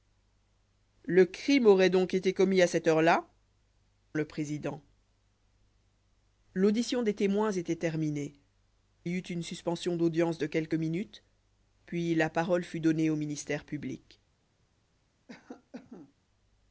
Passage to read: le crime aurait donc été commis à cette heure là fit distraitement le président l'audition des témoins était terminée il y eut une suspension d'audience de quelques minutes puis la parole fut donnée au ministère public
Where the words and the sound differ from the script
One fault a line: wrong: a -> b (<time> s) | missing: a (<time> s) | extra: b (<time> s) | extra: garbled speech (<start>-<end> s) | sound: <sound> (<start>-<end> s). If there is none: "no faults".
missing: fit distraitement (3.3 s)
missing: il (8.3 s)
sound: cough (15.3-16.1 s)